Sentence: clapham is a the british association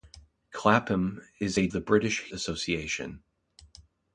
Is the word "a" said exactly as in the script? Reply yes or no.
yes